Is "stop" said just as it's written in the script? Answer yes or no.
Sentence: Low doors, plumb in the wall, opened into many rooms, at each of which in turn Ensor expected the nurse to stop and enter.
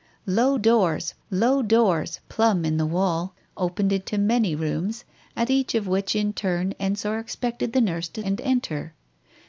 no